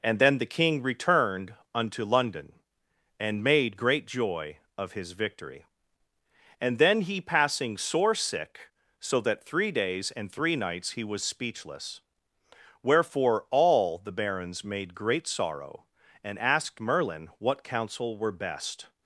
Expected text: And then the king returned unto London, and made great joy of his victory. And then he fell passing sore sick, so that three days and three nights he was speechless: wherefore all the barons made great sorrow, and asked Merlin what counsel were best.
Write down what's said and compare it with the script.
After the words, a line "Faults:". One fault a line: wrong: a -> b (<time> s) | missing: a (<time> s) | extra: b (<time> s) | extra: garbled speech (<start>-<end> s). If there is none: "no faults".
And then the king returned unto London, and made great joy of his victory. And then he passing sore sick, so that three days and three nights he was speechless: wherefore all the barons made great sorrow, and asked Merlin what counsel were best.
Faults:
missing: fell (7.2 s)